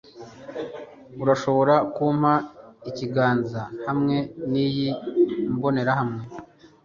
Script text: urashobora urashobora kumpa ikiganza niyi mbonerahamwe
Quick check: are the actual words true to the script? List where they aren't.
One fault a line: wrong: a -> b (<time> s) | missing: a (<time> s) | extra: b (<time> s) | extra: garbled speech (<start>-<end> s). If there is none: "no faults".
missing: urashobora (1.8 s)
extra: hamwe (3.9 s)